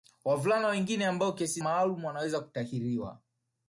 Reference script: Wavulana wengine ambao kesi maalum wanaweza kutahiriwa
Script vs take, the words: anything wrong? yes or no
no